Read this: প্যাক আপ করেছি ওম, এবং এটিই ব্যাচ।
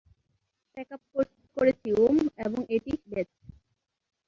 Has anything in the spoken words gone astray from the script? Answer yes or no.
no